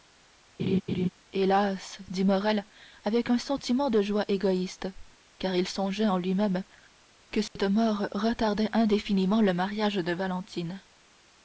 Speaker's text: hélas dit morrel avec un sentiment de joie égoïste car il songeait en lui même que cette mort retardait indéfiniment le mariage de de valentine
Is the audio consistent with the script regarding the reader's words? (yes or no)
no